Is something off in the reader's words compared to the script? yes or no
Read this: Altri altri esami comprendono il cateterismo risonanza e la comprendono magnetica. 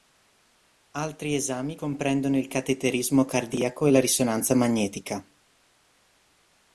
yes